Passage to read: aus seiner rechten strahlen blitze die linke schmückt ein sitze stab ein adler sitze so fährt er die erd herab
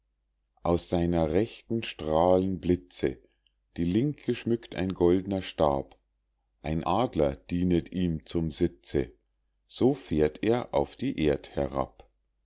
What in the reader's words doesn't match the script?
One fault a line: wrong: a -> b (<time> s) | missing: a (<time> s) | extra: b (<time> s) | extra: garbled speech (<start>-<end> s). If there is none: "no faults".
wrong: sitze -> goldner (5.0 s)
extra: dienet ihm zum (7.3 s)
extra: auf (10.7 s)